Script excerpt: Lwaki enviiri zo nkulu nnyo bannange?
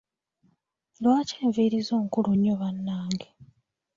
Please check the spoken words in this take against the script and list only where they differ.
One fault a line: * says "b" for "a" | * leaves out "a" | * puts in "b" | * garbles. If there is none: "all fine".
all fine